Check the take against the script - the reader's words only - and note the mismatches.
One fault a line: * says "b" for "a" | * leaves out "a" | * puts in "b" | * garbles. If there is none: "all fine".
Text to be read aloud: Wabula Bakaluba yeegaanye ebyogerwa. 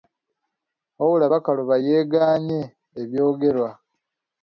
all fine